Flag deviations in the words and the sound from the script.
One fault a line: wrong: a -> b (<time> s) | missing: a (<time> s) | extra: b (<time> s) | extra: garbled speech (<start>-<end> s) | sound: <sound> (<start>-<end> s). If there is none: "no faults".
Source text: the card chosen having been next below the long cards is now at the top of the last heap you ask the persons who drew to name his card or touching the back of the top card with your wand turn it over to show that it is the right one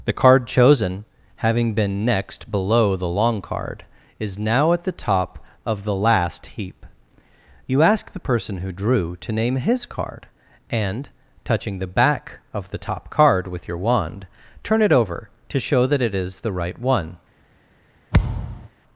wrong: cards -> card (3.4 s)
wrong: persons -> person (8.2 s)
wrong: or -> and (10.7 s)
sound: thud (18.1-18.7 s)